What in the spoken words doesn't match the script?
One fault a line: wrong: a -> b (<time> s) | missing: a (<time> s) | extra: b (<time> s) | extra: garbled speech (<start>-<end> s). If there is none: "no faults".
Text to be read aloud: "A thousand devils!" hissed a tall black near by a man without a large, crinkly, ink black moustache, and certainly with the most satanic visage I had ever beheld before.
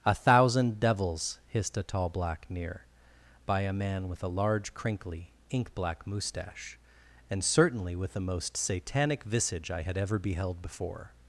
wrong: without -> with (4.1 s)